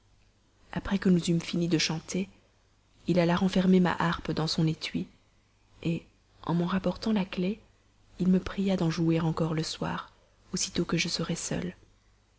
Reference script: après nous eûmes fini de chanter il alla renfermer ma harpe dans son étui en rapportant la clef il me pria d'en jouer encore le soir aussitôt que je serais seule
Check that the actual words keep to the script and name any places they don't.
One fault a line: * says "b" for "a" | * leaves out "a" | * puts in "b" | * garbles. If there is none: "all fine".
* puts in "que"
* puts in "m'en"